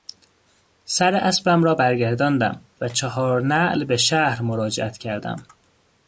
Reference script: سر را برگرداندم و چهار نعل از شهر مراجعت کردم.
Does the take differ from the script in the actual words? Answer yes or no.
yes